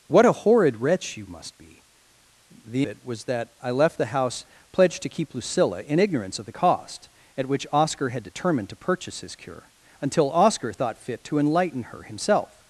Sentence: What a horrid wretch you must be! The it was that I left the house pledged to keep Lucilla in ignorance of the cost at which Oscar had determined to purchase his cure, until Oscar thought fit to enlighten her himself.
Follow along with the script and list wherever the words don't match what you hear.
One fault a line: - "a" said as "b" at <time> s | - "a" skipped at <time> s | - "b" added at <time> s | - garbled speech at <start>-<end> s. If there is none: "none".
none